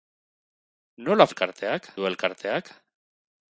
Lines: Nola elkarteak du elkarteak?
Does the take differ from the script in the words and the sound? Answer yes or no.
no